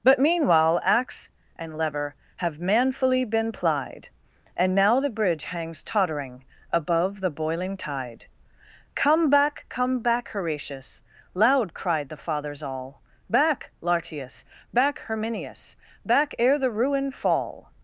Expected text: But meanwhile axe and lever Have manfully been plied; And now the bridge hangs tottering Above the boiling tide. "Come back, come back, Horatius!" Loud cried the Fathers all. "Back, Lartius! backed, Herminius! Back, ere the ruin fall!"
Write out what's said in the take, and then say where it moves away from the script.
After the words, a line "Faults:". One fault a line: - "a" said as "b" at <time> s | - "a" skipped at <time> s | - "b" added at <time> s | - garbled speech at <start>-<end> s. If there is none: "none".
But meanwhile axe and lever Have manfully been plied; And now the bridge hangs tottering Above the boiling tide. "Come back, come back, Horatius!" Loud cried the Fathers all. "Back, Lartius! back, Herminius! Back, ere the ruin fall!"
Faults:
- "backed" said as "back" at 14.7 s